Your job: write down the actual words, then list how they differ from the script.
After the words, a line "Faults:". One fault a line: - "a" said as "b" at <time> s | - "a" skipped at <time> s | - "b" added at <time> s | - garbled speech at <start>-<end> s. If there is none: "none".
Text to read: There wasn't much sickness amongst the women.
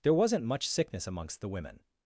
There wasn't much sickness amongst the women.
Faults:
none